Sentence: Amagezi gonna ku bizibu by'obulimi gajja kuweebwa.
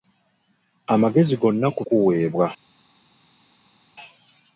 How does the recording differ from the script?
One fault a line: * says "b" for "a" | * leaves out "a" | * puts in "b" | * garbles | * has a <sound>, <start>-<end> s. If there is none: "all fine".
* leaves out "bizibu by'obulimi gajja"